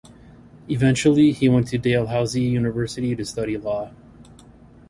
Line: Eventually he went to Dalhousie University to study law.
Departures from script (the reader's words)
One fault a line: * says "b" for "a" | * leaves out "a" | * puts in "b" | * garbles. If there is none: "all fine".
all fine